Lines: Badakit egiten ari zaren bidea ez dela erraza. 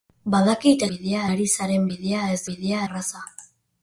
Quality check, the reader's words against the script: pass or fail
fail